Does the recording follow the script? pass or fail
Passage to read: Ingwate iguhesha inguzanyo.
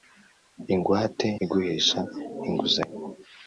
pass